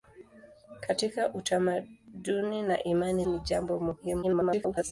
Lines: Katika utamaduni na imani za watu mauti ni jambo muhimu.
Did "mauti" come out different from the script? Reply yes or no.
yes